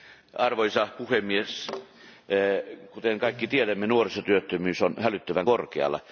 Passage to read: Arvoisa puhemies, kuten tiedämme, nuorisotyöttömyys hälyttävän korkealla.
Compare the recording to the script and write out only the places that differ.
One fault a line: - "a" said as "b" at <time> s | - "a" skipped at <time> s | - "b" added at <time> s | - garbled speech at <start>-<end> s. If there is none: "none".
- "kaikki" added at 3.2 s
- "on" added at 4.8 s